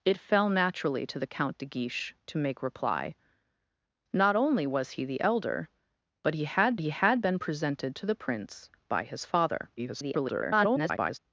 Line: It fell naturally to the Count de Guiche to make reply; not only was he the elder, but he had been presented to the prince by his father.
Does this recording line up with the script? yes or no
no